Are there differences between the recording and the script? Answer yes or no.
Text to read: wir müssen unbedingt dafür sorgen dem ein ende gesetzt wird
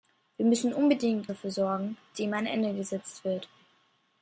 no